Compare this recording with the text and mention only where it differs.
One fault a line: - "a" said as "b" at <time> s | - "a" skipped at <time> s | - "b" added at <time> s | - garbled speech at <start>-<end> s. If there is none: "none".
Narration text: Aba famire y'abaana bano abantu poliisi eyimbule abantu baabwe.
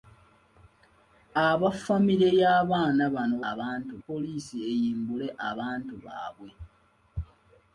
none